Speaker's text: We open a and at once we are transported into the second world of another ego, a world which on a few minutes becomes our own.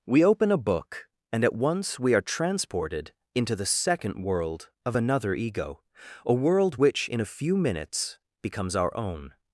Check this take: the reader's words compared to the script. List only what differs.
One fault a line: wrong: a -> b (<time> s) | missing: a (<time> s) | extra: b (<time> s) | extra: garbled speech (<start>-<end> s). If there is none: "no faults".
extra: book (0.6 s)
wrong: on -> in (7.1 s)